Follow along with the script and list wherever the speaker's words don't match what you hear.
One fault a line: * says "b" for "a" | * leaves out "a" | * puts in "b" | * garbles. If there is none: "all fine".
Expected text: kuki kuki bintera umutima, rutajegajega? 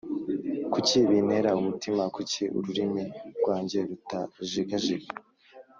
* puts in "bintera umutima"
* says "ururimi rwanjye" for "bintera umutima"